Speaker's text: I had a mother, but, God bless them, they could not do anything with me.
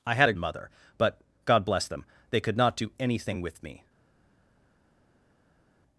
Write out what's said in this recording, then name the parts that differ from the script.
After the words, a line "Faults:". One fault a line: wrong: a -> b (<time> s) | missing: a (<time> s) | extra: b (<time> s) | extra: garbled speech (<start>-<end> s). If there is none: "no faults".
I had a mother, but, God bless them, they could not do anything with me.
Faults:
no faults